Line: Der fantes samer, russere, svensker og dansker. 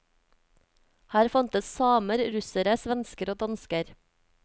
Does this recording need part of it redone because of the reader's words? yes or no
yes